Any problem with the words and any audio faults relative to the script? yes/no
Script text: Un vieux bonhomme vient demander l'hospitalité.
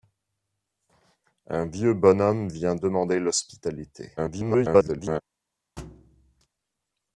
yes